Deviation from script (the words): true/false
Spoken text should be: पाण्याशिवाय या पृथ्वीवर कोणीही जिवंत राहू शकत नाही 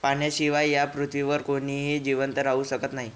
false